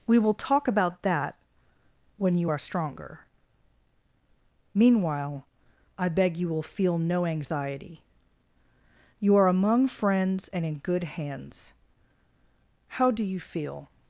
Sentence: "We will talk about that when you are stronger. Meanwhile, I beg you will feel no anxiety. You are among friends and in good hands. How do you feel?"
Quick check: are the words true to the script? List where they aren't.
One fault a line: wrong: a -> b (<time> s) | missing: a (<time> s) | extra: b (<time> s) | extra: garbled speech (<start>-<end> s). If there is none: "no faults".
no faults